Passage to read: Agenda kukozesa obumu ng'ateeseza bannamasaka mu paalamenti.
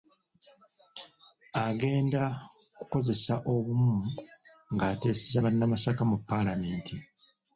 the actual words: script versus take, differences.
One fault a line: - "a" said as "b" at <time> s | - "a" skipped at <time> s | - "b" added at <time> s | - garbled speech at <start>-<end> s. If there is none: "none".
none